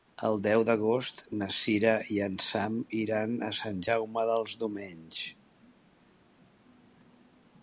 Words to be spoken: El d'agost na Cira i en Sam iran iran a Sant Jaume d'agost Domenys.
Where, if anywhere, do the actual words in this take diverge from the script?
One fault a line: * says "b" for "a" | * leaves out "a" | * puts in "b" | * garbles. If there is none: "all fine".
* puts in "deu"
* leaves out "iran"
* says "dels" for "d'agost"